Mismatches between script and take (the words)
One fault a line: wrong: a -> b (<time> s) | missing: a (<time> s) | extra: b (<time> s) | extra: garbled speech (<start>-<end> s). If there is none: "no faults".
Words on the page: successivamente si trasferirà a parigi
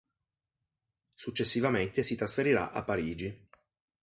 no faults